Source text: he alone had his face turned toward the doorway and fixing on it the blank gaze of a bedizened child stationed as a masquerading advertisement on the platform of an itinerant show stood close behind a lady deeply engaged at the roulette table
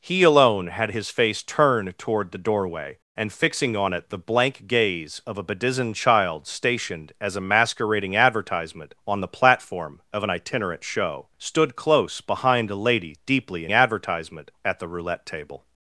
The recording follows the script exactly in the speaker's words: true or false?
false